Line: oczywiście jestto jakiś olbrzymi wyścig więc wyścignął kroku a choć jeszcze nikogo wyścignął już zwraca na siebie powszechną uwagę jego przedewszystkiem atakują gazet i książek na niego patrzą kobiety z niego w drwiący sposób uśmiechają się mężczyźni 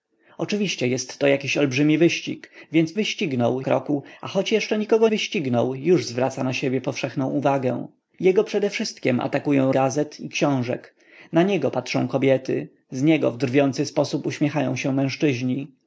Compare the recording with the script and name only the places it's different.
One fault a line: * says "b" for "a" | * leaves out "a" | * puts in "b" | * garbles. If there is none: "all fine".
all fine